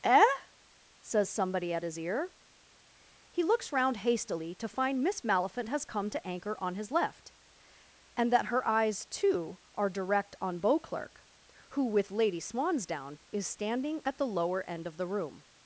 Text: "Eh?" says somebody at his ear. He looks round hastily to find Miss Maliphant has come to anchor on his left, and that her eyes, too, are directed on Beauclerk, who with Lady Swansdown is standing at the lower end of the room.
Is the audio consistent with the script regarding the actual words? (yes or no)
no